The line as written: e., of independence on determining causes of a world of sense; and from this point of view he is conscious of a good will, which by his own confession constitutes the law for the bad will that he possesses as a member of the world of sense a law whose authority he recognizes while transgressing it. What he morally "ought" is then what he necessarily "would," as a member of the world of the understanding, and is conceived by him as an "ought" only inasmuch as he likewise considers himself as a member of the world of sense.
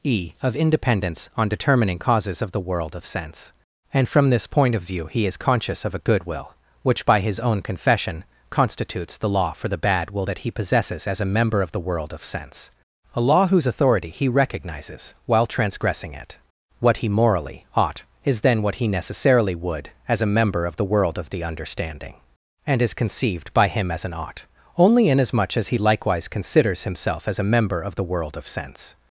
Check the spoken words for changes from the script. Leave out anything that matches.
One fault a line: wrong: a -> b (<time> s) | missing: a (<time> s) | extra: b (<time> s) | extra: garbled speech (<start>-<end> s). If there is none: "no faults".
wrong: a -> the (2.5 s)